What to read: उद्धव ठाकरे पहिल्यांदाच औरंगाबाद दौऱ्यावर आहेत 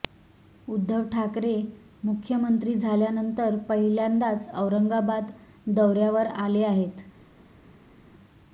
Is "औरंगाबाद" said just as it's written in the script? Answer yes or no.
yes